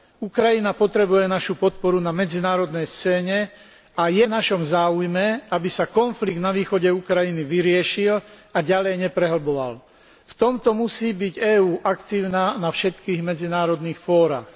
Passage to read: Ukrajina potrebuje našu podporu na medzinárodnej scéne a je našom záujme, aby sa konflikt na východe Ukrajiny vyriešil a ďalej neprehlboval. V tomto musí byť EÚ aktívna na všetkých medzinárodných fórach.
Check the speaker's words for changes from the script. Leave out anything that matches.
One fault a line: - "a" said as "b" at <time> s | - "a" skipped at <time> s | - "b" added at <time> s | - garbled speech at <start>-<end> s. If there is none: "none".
none